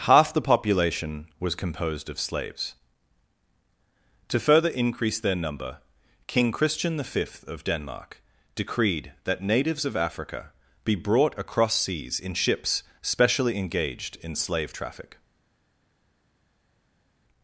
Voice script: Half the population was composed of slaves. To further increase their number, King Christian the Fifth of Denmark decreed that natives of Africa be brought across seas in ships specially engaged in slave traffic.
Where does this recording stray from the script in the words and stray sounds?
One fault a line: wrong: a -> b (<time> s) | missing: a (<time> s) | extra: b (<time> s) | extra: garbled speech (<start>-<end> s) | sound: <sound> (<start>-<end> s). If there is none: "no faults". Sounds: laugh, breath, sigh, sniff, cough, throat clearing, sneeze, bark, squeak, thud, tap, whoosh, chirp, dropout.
no faults